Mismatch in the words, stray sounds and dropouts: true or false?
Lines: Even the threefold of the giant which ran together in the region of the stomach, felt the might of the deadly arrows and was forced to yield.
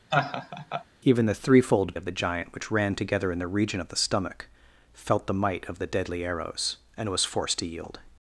true